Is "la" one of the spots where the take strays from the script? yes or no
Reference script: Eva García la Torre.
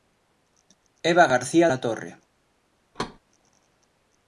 no